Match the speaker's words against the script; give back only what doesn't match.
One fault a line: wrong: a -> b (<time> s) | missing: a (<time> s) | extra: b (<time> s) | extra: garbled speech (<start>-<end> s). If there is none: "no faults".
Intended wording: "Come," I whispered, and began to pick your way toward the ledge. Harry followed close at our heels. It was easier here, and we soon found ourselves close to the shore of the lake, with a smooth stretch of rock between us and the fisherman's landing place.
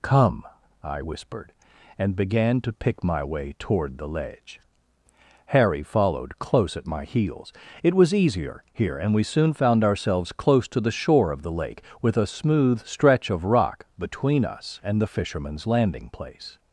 wrong: your -> my (3.0 s)
wrong: our -> my (6.9 s)